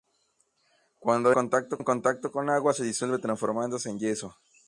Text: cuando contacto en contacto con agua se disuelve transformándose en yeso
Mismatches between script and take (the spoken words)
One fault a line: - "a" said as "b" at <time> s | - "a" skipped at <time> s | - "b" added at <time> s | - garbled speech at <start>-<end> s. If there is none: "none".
none